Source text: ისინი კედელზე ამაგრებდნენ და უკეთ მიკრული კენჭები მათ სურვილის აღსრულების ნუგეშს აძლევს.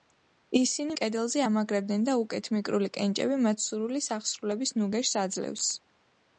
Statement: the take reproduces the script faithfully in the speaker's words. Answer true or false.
true